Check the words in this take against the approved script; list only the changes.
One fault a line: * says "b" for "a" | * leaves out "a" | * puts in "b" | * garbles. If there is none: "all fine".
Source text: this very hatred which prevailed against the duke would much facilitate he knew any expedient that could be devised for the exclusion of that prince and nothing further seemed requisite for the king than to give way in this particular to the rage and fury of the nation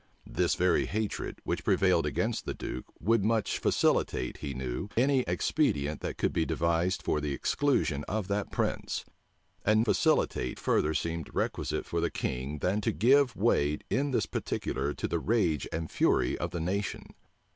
* says "facilitate" for "nothing"